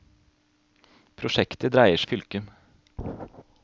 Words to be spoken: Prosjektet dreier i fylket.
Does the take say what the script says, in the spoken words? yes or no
yes